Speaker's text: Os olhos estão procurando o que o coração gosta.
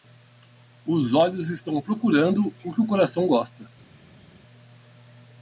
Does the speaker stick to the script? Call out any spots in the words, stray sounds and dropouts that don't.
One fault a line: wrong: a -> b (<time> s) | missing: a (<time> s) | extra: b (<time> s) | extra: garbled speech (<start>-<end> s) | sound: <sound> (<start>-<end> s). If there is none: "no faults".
no faults